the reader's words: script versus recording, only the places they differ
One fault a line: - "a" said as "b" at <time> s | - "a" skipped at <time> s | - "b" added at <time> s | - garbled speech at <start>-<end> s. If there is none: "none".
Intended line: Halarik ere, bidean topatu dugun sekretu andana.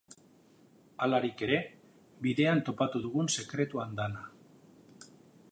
none